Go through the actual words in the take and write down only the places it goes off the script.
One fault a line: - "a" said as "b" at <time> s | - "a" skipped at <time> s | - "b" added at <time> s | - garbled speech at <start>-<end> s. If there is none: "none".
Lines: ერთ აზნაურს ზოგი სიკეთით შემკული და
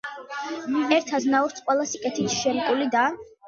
- "ზოგი" said as "ყველა" at 1.7 s